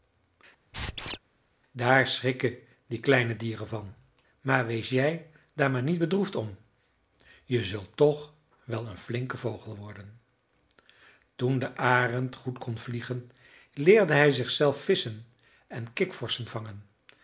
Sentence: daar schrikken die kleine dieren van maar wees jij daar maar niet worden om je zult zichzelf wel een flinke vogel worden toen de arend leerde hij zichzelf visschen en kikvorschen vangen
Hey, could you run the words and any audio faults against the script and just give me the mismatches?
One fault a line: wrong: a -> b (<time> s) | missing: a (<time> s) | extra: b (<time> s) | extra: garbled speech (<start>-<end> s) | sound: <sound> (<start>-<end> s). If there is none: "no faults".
sound: squeak (0.7-1.2 s)
wrong: worden -> bedroefd (6.0 s)
wrong: zichzelf -> toch (8.0 s)
extra: goed kon vliegen (12.4 s)